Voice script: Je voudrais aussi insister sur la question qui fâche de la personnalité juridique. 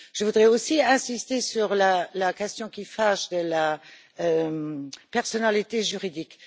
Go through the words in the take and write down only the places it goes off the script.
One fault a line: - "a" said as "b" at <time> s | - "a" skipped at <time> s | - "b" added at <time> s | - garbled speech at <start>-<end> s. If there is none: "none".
none